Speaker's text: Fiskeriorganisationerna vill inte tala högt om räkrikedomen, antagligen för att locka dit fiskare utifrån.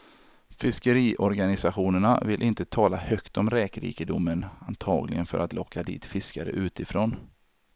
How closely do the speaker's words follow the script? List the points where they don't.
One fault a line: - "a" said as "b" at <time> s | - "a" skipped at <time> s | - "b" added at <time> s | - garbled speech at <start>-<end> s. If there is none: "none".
none